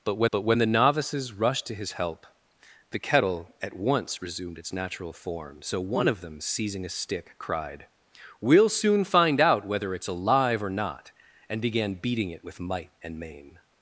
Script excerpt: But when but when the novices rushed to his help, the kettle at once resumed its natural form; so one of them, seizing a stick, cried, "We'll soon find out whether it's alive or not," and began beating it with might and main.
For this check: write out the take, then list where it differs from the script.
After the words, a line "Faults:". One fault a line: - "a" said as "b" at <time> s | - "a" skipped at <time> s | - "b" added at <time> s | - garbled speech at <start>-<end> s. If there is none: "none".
But when but when the novices rushed to his help, the kettle at once resumed its natural form; so one of them, seizing a stick, cried, "We'll soon find out whether it's alive or not," and began beating it with might and main.
Faults:
none